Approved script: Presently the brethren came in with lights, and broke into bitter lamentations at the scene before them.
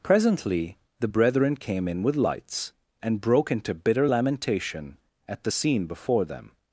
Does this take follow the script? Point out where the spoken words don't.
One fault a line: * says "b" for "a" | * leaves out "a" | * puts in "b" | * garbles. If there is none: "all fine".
* says "lamentation" for "lamentations"